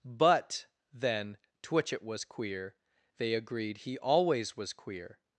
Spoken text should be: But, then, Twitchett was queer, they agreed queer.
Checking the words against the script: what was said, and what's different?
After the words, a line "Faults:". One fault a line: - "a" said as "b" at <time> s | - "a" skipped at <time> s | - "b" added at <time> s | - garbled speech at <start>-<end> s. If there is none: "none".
But, then, Twitchett was queer, they agreed he always was queer.
Faults:
- "he always was" added at 3.8 s